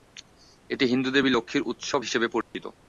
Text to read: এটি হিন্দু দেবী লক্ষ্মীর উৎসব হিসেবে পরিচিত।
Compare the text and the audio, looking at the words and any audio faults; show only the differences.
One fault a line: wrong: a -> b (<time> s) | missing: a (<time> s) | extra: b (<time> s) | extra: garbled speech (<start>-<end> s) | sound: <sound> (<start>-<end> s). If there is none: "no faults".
sound: dropout (2.4-2.5 s)